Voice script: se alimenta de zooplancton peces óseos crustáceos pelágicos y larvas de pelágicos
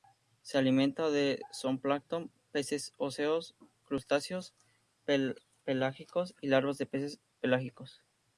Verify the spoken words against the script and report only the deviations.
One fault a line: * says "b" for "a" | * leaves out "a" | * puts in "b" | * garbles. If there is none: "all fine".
* puts in "peces"